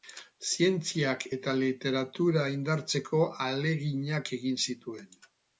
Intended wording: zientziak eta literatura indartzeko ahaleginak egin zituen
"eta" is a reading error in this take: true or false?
false